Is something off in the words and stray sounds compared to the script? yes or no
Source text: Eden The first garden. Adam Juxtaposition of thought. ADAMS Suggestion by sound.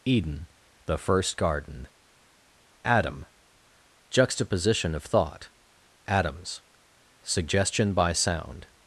no